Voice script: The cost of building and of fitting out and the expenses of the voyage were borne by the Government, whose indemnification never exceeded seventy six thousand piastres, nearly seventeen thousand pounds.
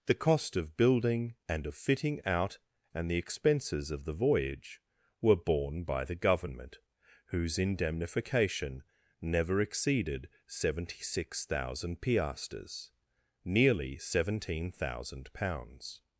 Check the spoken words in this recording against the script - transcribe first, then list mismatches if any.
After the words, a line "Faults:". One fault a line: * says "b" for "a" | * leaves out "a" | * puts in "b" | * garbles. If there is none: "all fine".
The cost of building and of fitting out and the expenses of the voyage were borne by the Government, whose indemnification never exceeded seventy six thousand piastres, nearly seventeen thousand pounds.
Faults:
all fine